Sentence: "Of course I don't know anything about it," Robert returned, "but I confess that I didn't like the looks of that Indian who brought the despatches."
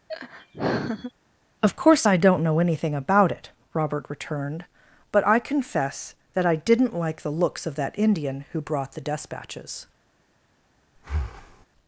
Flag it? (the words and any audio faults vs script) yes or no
yes